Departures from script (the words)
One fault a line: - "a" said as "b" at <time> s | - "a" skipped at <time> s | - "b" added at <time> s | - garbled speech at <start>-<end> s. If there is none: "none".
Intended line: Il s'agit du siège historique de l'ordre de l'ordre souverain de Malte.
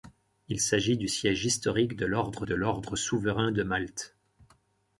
none